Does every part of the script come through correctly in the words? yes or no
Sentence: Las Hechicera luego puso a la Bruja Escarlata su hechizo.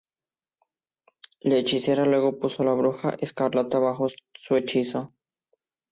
no